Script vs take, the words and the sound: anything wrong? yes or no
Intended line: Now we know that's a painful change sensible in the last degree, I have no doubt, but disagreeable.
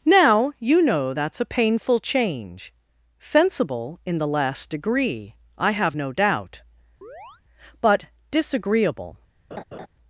yes